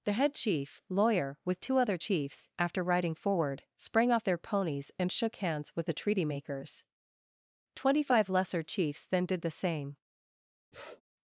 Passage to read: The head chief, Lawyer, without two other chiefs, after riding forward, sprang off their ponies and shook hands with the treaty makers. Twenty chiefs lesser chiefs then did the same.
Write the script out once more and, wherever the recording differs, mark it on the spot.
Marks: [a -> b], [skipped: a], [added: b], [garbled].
The head chief, Lawyer, [without -> with] two other chiefs, after riding forward, sprang off their ponies and shook hands with the treaty makers. Twenty [chiefs -> five] lesser chiefs then did the same.